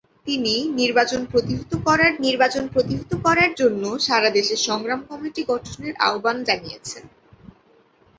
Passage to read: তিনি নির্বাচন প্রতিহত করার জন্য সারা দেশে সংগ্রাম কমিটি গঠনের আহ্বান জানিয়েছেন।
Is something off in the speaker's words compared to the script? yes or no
yes